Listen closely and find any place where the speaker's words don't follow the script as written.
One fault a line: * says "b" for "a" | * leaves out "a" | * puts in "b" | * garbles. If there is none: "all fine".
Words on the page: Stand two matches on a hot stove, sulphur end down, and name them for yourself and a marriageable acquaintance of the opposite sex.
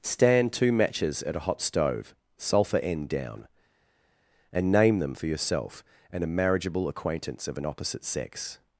* says "at" for "on"
* says "an" for "the"